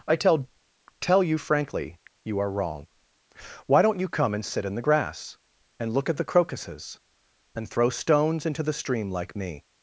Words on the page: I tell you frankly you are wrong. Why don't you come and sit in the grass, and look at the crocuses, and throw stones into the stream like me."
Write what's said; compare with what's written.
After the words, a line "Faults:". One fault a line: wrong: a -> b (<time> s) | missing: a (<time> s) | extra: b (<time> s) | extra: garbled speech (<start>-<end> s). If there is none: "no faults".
I tell tell you frankly you are wrong. Why don't you come and sit in the grass, and look at the crocuses, and throw stones into the stream like me."
Faults:
extra: tell (1.0 s)